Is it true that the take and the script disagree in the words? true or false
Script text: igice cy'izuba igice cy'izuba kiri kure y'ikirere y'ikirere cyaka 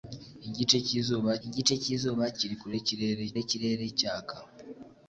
false